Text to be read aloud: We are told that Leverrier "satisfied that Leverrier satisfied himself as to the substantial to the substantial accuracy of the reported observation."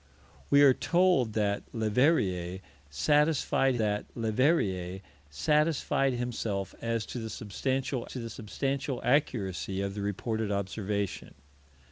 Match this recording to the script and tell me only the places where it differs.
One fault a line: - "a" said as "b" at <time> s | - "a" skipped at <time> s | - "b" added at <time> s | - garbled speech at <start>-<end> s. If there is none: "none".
none